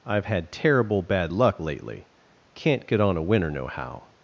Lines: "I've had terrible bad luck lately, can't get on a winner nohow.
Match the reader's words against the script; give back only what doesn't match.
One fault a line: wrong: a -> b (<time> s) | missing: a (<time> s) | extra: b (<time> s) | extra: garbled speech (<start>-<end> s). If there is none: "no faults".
no faults